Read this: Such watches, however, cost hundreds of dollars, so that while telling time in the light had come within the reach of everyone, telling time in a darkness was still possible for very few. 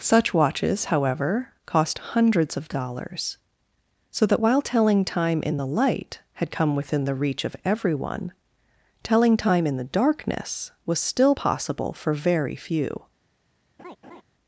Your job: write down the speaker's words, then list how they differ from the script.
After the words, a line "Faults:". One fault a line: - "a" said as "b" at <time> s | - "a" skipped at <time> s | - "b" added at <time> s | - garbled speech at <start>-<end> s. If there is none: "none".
Such watches, however, cost hundreds of dollars, so that while telling time in the light had come within the reach of everyone, telling time in the darkness was still possible for very few.
Faults:
- "a" said as "the" at 9.8 s